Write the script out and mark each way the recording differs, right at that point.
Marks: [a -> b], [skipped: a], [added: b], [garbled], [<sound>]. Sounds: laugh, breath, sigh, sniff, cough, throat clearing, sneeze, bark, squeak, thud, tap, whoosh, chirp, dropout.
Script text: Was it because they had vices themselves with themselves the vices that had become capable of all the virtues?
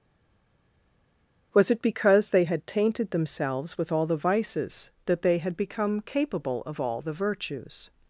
Was it because they had [vices -> tainted] themselves with [themselves -> all] the vices that [added: they] had become capable of all the virtues?